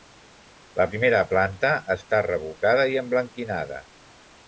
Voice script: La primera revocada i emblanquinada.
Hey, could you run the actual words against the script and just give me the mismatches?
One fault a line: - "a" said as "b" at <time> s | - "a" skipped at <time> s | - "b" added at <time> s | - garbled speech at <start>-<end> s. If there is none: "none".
- "planta està" added at 1.3 s